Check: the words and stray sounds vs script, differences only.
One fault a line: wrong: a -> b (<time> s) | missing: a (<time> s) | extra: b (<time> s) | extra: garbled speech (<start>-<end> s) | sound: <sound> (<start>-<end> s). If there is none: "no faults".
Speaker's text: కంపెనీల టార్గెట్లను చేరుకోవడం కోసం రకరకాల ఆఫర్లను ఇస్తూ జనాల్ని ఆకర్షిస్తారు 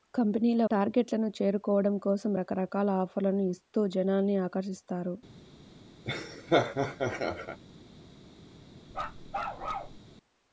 sound: laugh (6.0-7.6 s)
sound: bark (8.9-10.0 s)